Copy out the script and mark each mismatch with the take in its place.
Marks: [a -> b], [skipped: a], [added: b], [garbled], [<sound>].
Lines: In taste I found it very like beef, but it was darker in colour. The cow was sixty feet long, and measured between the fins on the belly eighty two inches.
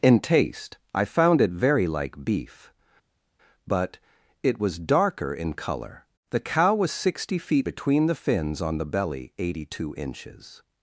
In taste I found it very like beef, but it was darker in colour. The cow was sixty feet [skipped: long, and measured] between the fins on the belly eighty two inches.